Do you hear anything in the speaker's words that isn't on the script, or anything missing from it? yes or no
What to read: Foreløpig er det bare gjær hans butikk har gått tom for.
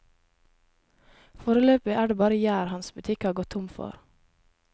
no